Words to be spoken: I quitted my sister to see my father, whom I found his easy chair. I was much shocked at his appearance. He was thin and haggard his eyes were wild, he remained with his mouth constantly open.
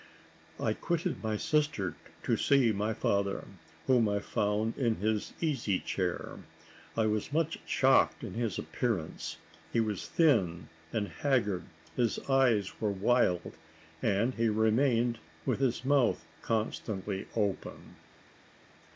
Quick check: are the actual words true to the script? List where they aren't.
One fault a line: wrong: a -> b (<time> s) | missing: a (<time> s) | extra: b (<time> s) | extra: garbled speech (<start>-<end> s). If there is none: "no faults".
extra: in (4.8 s)
extra: and (14.0 s)